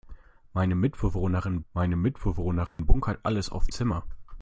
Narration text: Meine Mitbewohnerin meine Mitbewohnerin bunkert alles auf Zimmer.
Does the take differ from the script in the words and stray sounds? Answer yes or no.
yes